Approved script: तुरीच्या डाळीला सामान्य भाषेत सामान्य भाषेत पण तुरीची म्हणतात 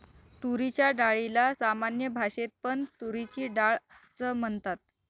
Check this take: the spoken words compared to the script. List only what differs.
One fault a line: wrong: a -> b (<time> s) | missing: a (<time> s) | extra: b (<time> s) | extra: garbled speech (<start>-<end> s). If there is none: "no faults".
wrong: सामान्य भाषेत पण तुरीची -> पण तुरीची डाळ च (2.6 s)